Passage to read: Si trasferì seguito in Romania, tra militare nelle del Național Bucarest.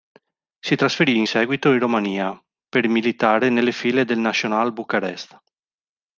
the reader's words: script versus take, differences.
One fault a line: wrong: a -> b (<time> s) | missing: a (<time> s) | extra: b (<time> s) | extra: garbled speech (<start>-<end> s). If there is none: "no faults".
extra: in (1.1 s)
wrong: tra -> per (2.7 s)
extra: file (3.7 s)